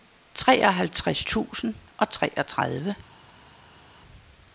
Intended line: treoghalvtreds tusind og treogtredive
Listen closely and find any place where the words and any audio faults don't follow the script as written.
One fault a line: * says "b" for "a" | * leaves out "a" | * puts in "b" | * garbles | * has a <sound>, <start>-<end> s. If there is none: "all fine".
all fine